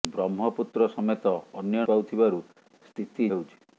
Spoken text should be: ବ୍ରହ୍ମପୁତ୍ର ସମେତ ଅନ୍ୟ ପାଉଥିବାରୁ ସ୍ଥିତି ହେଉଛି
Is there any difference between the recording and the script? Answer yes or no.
no